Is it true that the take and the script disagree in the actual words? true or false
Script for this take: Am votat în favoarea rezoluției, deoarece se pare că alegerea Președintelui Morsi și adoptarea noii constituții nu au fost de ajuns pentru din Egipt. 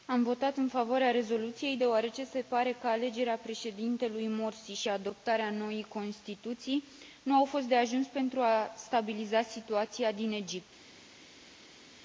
true